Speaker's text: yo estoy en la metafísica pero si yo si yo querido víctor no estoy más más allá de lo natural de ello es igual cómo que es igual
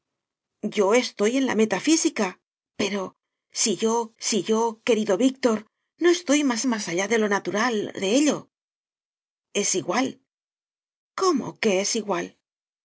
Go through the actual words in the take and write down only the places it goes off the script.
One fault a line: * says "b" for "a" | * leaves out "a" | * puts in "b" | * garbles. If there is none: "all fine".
all fine